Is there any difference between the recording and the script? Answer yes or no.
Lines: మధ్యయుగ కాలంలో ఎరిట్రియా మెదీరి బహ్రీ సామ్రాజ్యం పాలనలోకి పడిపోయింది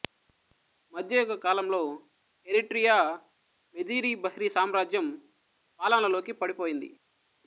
no